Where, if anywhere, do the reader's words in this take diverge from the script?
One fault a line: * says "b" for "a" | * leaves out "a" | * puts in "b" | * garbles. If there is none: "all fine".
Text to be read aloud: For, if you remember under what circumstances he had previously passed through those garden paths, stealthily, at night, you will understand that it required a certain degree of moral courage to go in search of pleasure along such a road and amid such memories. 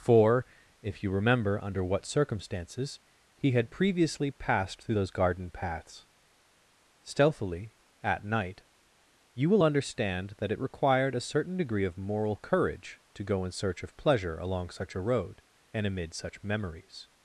all fine